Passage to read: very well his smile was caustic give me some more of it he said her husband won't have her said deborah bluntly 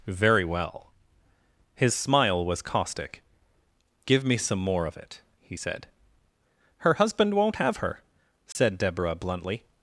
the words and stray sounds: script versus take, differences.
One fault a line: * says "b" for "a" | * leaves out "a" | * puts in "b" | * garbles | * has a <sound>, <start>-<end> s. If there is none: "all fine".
* has a dropout, 8.5-8.6 s